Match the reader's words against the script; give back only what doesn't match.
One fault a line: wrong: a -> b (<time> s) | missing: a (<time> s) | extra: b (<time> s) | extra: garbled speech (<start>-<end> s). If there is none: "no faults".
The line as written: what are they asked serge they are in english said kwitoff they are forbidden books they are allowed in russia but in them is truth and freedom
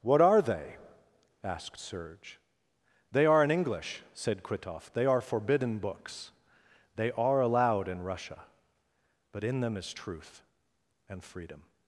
no faults